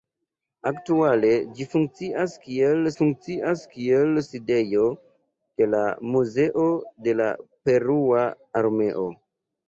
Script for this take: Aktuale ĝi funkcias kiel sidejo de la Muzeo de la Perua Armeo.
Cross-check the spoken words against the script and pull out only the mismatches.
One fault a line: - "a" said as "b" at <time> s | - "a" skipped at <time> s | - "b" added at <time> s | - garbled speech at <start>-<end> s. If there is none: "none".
- "funkcias kiel" added at 3.0 s